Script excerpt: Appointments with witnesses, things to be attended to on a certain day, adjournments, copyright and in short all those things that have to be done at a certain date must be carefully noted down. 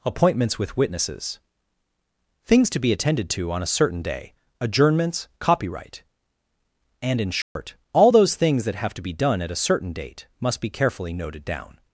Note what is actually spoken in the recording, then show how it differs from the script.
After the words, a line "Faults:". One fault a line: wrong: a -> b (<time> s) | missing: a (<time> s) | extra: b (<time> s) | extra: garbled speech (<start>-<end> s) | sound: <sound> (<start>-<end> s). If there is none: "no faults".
Appointments with witnesses, things to be attended to on a certain day, adjournments, copyright and in short all those things that have to be done at a certain date must be carefully noted down.
Faults:
sound: dropout (7.4-7.6 s)